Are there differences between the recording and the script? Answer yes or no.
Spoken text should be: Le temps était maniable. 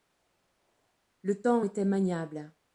no